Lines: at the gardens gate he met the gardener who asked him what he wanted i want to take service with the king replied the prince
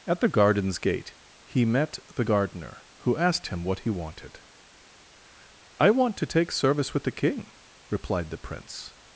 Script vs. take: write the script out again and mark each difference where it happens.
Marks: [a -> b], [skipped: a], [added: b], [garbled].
at the gardens gate he met the gardener who asked him what he wanted i want to take service with the king replied the prince